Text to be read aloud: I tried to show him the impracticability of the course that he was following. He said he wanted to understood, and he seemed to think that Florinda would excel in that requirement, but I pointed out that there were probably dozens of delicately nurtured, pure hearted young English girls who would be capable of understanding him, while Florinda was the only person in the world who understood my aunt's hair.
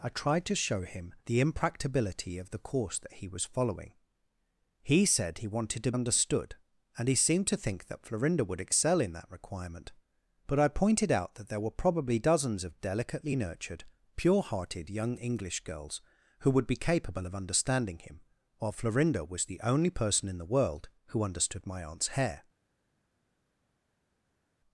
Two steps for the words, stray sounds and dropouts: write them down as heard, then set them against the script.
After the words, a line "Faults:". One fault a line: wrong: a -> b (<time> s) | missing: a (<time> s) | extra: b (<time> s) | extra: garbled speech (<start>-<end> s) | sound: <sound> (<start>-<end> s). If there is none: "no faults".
I tried to show him the impracticability of the course that he was following. He said he wanted to understood, and he seemed to think that Florinda would excel in that requirement, but I pointed out that there were probably dozens of delicately nurtured, pure hearted young English girls who would be capable of understanding him, while Florinda was the only person in the world who understood my aunt's hair.
Faults:
no faults